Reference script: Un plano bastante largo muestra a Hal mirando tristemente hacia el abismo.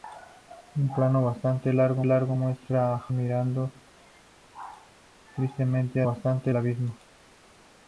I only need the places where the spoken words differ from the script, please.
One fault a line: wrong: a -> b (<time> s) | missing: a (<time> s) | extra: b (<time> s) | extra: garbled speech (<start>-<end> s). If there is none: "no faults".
extra: largo (2.0 s)
missing: Hal (3.1 s)
wrong: hacia -> bastante (6.0 s)